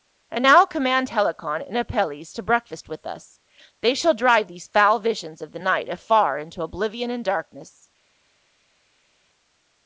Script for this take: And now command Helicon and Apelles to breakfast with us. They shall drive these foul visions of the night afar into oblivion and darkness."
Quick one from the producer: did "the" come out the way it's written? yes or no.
yes